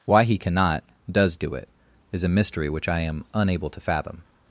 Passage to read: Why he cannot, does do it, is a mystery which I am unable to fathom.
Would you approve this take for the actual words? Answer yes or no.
yes